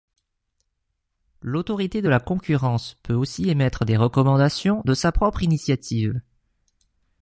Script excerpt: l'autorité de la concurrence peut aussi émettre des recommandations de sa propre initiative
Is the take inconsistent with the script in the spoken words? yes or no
no